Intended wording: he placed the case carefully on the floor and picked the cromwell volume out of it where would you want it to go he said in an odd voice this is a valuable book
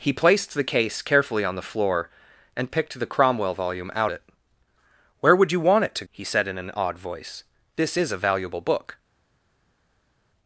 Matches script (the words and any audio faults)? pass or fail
fail